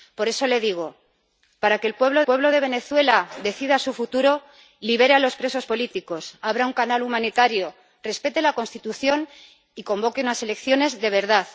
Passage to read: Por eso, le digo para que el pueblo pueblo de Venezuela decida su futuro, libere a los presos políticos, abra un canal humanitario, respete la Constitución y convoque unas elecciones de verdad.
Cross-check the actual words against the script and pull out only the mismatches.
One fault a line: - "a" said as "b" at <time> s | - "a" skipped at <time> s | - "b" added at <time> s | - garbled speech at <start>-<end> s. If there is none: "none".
none